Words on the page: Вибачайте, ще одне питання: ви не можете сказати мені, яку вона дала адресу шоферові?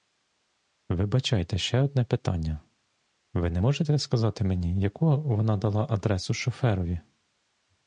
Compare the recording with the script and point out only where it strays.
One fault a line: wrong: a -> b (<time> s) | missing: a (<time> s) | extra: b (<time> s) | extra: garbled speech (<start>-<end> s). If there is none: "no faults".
no faults